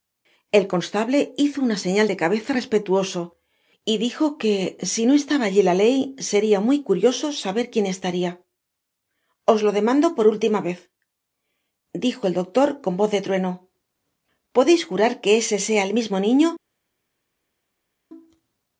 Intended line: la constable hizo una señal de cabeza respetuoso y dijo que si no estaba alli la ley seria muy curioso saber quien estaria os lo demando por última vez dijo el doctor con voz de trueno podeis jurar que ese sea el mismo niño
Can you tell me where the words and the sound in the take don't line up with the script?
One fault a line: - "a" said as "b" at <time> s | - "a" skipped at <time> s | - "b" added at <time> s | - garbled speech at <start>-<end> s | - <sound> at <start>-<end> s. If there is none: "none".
- "la" said as "el" at 0.5 s